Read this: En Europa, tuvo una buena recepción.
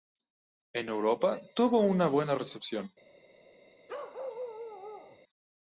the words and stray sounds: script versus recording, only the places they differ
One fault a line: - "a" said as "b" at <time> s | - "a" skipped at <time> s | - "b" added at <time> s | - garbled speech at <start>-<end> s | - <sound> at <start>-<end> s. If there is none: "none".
- bark at 3.9-5.2 s